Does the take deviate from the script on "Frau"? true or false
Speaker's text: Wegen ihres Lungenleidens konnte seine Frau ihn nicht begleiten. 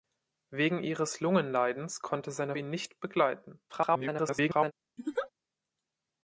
true